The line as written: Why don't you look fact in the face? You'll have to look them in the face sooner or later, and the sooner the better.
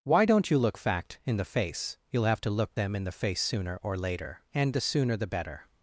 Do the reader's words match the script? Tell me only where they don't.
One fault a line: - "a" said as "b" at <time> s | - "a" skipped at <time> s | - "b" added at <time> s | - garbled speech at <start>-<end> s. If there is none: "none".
none